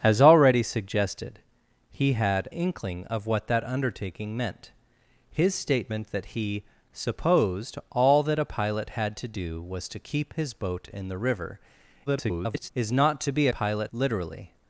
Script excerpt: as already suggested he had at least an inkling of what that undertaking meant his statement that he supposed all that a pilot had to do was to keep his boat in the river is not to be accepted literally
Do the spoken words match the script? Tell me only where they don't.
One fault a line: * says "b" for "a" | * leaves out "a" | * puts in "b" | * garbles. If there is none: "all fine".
* leaves out "at least an"
* garbles
* says "pilot" for "accepted"